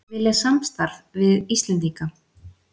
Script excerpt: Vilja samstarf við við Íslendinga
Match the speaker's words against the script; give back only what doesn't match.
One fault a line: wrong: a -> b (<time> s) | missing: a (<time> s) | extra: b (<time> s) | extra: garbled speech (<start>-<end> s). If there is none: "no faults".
missing: við (1.6 s)